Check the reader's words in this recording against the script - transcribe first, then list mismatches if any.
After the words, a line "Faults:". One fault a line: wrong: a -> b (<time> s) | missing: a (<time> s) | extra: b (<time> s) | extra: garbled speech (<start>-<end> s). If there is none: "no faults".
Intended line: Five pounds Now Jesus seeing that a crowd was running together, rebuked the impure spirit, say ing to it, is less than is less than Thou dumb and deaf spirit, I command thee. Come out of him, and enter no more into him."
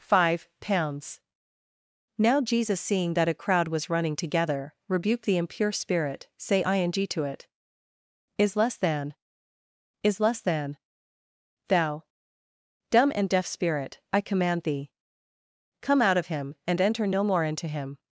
Five pounds Now Jesus seeing that a crowd was running together, rebuked the impure spirit, say ing to it, is less than is less than Thou dumb and deaf spirit, I command thee. Come out of him, and enter no more into him."
Faults:
no faults